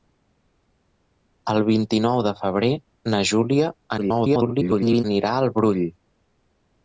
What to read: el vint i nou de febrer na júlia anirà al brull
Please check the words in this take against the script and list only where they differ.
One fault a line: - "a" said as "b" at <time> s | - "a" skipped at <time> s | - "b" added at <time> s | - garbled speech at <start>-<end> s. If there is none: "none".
- garbled speech at 4.0-5.0 s